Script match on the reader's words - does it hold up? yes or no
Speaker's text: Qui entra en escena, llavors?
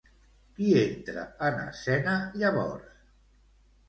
yes